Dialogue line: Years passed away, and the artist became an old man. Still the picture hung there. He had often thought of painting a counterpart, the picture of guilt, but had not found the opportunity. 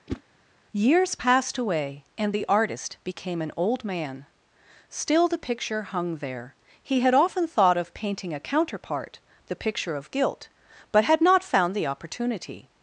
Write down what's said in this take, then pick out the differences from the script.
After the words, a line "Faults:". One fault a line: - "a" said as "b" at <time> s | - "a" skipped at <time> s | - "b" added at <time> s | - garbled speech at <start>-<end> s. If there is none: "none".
Years passed away, and the artist became an old man. Still the picture hung there. He had often thought of painting a counterpart, the picture of guilt, but had not found the opportunity.
Faults:
none